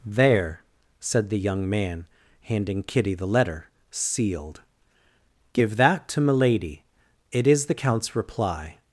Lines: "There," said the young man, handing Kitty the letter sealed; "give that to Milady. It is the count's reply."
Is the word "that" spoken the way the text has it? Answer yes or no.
yes